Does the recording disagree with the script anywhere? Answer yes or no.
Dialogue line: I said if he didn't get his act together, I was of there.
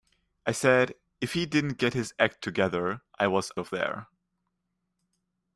no